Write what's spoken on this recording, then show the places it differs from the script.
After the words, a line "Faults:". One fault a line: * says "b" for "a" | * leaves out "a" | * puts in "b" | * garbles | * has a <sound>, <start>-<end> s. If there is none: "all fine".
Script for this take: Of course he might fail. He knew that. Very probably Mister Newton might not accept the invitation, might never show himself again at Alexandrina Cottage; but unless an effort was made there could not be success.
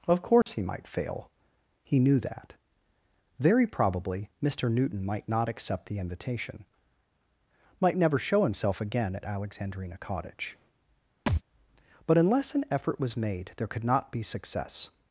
Of course he might fail. He knew that. Very probably Mister Newton might not accept the invitation, might never show himself again at Alexandrina Cottage; but unless an effort was made there could not be success.
Faults:
* has a dropout, 0.4-0.5 s
* has a thud, 11.3-11.4 s